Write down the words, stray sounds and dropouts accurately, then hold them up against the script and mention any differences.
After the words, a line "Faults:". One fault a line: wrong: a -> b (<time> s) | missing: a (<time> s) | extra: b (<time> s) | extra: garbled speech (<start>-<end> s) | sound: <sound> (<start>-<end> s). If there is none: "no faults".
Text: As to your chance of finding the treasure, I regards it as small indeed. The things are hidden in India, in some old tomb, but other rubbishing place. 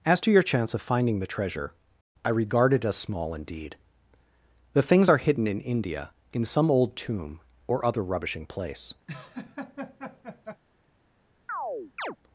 As to your chance of finding the treasure, I regard it as small indeed. The things are hidden in India, in some old tomb, or other rubbishing place.
Faults:
wrong: regards -> regard (2.3 s)
wrong: but -> or (7.7 s)
sound: laugh (9.1-10.6 s)
sound: chirp (11.5-12.2 s)